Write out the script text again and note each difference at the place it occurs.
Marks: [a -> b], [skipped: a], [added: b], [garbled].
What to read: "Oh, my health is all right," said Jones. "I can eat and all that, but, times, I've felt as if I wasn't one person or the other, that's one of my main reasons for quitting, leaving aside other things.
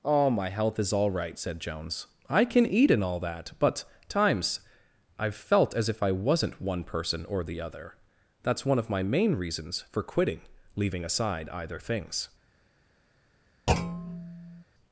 "Oh, my health is all right," said Jones. "I can eat and all that, but, times, I've felt as if I wasn't one person or the other, that's one of my main reasons for quitting, leaving aside [other -> either] things.